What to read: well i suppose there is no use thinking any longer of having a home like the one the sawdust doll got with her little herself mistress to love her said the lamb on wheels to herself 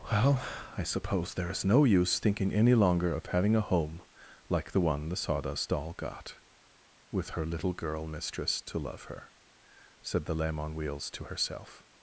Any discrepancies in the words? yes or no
yes